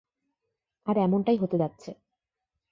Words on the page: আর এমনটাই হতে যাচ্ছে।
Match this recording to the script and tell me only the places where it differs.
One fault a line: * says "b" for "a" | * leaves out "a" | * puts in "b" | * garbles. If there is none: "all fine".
all fine